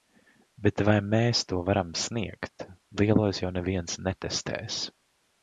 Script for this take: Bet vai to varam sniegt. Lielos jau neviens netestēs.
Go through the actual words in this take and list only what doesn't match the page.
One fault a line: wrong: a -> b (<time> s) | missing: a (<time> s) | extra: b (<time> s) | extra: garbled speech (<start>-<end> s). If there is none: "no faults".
extra: mēs (1.1 s)